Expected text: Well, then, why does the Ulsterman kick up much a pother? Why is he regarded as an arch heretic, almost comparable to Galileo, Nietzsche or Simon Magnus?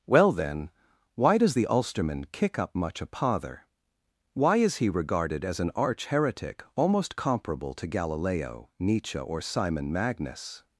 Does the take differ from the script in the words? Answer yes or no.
no